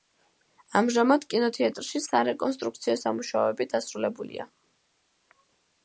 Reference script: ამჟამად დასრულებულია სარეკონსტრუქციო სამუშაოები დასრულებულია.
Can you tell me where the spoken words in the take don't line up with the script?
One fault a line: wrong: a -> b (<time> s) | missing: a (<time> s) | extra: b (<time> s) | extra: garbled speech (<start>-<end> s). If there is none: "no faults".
wrong: დასრულებულია -> კინოთეატრში (1.3 s)